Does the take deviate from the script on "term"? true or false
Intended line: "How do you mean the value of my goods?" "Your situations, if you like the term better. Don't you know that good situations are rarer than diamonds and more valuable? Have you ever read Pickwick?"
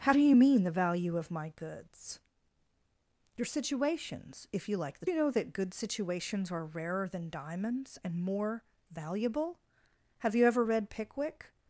true